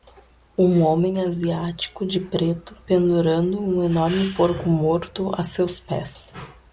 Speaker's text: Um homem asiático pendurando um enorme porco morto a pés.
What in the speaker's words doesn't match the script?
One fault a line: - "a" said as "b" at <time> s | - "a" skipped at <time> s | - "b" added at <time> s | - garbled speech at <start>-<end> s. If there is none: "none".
- "de preto" added at 2.1 s
- "seus" added at 5.4 s